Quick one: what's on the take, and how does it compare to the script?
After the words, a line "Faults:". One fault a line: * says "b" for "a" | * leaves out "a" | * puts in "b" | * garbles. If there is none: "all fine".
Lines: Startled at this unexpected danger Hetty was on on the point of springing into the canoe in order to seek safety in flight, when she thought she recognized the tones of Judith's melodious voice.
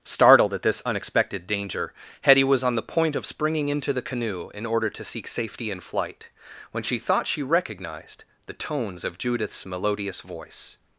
Startled at this unexpected danger Hetty was on the point of springing into the canoe in order to seek safety in flight, when she thought she recognized the tones of Judith's melodious voice.
Faults:
* leaves out "on"